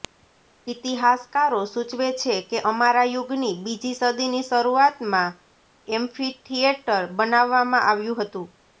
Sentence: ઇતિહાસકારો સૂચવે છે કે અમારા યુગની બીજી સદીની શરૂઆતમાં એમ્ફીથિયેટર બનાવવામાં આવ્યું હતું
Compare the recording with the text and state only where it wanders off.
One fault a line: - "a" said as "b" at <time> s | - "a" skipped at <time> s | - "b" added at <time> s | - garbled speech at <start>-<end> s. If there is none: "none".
none